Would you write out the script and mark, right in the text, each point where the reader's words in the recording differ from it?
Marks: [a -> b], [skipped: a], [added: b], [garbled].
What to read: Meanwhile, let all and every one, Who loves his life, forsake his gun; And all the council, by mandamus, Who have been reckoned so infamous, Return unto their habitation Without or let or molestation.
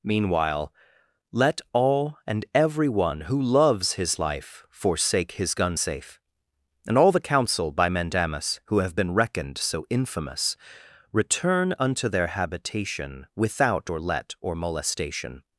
Meanwhile, let all and every one, Who loves his life, forsake his gun; [added: safe] And all the council, by mandamus, Who have been reckoned so infamous, Return unto their habitation Without or let or molestation.